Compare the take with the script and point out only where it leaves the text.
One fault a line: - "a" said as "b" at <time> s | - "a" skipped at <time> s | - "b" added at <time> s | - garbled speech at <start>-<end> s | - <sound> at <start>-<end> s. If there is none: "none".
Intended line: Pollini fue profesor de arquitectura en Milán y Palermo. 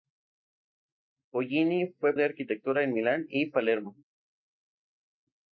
- "profesor" skipped at 2.2 s